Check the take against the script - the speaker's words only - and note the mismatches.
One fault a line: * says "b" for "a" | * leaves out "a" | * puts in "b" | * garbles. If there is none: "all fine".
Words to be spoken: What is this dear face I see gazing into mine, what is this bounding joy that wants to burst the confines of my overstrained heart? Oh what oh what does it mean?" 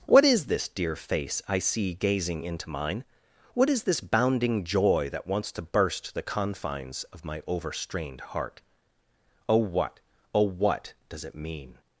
all fine